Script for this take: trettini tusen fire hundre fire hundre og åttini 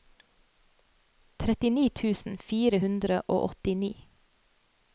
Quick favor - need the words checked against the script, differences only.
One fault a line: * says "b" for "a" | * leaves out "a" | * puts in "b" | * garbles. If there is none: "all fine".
* leaves out "fire hundre"